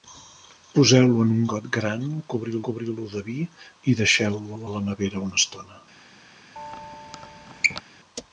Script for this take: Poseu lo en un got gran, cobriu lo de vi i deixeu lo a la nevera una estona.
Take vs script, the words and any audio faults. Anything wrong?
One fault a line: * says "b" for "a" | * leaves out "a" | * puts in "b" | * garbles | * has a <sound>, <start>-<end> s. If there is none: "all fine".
* puts in "cobriu"
* puts in "lo"
* has a squeak, 6.6-7.8 s